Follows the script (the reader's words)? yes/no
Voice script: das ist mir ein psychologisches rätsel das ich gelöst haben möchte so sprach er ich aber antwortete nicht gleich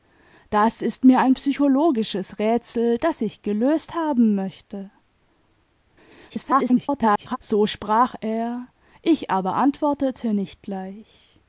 no